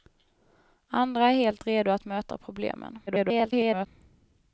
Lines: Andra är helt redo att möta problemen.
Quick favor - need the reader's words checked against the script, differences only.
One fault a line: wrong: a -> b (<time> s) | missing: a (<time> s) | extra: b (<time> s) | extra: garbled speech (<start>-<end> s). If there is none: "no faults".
extra: garbled speech (3.1-3.9 s)